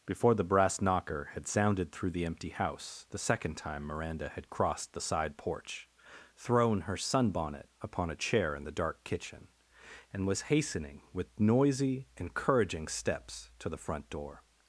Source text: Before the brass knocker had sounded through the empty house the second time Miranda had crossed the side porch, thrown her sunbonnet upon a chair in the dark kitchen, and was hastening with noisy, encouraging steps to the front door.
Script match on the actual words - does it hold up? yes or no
yes